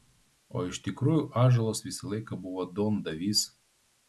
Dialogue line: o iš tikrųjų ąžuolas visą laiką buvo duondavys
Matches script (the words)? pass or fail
pass